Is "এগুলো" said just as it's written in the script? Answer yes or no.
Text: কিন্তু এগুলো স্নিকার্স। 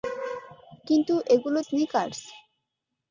yes